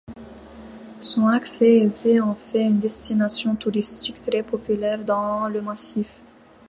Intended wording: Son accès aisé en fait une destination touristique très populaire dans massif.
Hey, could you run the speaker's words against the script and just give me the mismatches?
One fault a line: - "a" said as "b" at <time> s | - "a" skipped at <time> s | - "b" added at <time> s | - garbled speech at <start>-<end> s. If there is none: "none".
- "le" added at 5.5 s